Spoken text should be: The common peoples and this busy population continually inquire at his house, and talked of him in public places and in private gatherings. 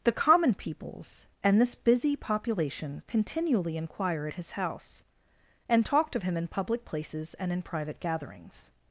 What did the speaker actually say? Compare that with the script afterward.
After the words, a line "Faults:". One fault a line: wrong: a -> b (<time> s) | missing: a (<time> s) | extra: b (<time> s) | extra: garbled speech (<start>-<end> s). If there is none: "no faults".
The common peoples and this busy population continually inquire at his house, and talked of him in public places and in private gatherings.
Faults:
no faults